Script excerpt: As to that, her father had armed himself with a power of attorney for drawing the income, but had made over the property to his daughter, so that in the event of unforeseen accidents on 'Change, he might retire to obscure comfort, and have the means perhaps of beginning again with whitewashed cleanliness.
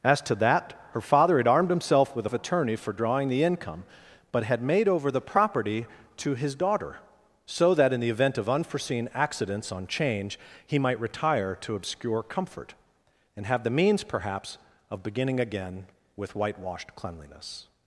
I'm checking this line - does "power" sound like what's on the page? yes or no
no